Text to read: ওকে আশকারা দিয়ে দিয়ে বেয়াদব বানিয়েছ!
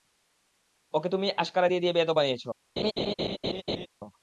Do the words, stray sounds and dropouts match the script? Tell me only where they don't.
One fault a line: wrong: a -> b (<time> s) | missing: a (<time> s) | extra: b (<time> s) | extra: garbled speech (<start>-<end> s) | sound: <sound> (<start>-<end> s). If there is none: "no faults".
extra: তুমিই (1.1 s)
sound: laugh (2.8-3.9 s)